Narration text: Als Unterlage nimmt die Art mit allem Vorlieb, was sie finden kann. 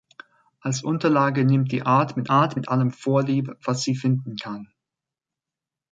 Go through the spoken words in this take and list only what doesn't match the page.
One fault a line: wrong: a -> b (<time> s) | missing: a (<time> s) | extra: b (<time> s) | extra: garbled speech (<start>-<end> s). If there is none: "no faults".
extra: Art mit (2.3 s)